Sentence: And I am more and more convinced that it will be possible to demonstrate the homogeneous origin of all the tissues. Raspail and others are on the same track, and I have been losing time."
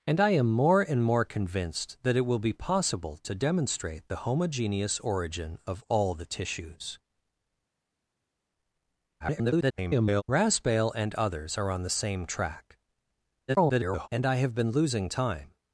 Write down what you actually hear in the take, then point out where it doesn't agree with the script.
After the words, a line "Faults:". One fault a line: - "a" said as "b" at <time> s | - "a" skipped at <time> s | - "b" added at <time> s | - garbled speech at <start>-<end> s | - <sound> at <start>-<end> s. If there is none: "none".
And I am more and more convinced that it will be possible to demonstrate the homogeneous origin of all the tissues. [garbled] Raspail and others are on the same track, [garbled] and I have been losing time."
Faults:
- garbled speech at 9.2-10.2 s
- garbled speech at 13.5-14.1 s